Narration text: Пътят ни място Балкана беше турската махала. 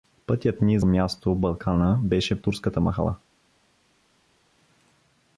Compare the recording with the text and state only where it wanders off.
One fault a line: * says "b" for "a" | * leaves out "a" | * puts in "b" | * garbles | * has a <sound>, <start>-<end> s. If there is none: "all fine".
all fine